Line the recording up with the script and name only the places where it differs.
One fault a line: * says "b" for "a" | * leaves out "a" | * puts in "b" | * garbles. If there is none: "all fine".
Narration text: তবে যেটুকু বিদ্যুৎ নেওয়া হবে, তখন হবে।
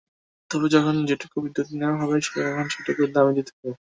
* puts in "যখন"
* puts in "সেটুকুর দামই দিতে"